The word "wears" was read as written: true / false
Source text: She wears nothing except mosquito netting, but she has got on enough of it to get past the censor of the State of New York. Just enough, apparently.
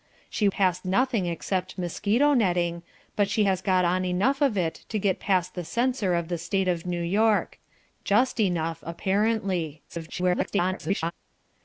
false